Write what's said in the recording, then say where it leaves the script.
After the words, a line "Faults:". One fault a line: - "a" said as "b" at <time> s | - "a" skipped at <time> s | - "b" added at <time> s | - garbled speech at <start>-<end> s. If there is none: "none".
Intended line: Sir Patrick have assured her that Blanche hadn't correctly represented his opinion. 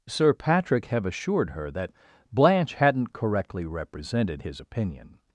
Sir Patrick have assured her that Blanche hadn't correctly represented his opinion.
Faults:
none